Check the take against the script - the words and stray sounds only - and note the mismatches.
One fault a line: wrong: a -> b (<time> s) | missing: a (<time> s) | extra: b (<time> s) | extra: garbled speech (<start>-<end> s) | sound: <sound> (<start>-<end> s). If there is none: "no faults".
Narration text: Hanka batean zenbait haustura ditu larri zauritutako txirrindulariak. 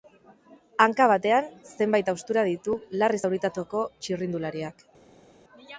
no faults